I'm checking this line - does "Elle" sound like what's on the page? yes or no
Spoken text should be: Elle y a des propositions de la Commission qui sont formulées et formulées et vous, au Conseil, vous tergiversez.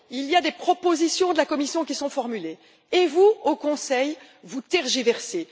no